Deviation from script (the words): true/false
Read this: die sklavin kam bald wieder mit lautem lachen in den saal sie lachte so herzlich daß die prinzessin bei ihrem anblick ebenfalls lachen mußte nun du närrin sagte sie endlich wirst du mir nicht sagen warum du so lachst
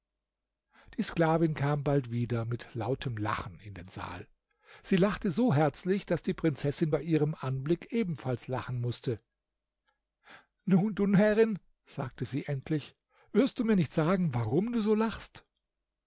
false